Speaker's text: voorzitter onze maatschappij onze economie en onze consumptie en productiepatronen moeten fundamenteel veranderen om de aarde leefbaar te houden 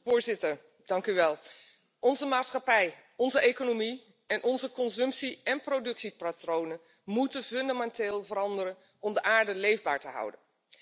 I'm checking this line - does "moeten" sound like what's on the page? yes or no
yes